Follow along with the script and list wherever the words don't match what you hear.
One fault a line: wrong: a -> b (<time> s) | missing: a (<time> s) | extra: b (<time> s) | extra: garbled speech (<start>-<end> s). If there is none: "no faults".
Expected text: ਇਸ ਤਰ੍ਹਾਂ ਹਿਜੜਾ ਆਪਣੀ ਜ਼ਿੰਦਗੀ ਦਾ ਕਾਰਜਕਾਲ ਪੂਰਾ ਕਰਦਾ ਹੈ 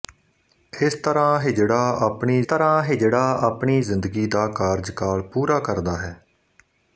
extra: ਤਰ੍ਹਾਂ ਹਿਜੜਾ ਆਪਣੀ (2.4 s)